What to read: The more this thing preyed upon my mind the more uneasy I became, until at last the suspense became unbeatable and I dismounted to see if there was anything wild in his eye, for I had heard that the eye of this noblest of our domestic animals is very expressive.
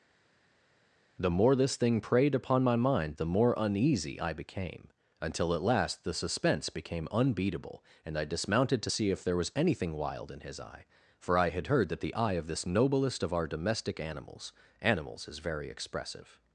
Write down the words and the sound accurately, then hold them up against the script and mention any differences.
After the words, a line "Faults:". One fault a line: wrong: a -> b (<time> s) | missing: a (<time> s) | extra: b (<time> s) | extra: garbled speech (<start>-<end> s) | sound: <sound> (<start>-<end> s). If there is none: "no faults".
The more this thing preyed upon my mind the more uneasy I became, until at last the suspense became unbeatable and I dismounted to see if there was anything wild in his eye, for I had heard that the eye of this noblest of our domestic animals animals is very expressive.
Faults:
extra: animals (14.8 s)